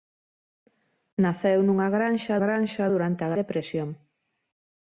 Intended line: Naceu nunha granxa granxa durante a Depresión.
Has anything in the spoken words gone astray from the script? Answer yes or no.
no